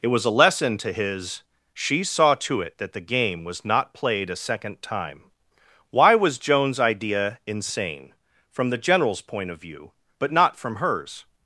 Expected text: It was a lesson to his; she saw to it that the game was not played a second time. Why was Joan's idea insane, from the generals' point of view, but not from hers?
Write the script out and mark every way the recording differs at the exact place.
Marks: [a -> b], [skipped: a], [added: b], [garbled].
It was a lesson to his; she saw to it that the game was not played a second time. Why was Joan's idea insane, from the generals' point of view, but not from hers?